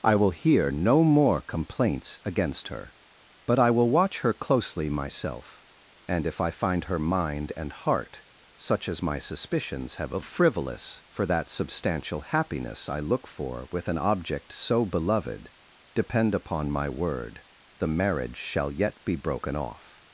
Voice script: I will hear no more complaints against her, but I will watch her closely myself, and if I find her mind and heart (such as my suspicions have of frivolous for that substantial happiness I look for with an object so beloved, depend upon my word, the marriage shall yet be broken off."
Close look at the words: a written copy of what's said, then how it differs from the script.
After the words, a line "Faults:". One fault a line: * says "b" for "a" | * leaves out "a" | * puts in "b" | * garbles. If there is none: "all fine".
I will hear no more complaints against her, but I will watch her closely myself, and if I find her mind and heart (such as my suspicions have of frivolous for that substantial happiness I look for with an object so beloved, depend upon my word, the marriage shall yet be broken off."
Faults:
all fine